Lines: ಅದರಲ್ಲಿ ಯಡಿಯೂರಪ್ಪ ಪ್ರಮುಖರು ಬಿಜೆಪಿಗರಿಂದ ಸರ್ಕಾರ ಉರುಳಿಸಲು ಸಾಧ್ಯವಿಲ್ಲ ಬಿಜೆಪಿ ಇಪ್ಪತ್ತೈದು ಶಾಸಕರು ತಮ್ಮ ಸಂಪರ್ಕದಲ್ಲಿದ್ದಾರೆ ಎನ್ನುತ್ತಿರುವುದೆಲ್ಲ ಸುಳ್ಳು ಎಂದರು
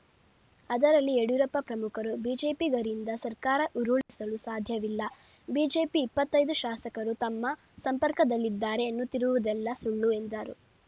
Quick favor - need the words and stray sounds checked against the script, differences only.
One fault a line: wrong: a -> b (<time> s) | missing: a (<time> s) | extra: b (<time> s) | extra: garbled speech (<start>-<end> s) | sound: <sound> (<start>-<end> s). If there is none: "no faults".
sound: dropout (4.0-4.1 s)